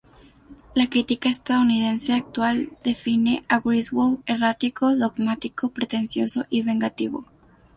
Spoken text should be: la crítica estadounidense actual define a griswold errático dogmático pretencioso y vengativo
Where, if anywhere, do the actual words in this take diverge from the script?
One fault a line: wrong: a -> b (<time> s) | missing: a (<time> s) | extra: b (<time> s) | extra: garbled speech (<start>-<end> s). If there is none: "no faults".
no faults